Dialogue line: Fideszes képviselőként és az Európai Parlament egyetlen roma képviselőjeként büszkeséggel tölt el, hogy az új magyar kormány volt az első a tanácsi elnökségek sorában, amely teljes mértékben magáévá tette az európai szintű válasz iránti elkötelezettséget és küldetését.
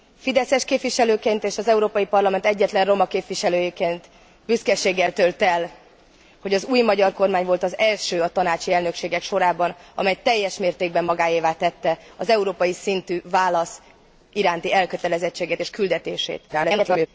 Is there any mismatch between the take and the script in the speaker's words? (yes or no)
yes